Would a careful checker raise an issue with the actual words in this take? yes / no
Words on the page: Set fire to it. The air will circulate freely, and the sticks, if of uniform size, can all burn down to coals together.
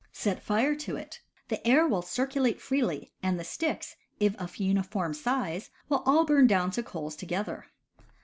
yes